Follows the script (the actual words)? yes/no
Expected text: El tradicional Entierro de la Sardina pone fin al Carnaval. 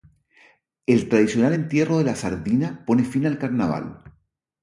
yes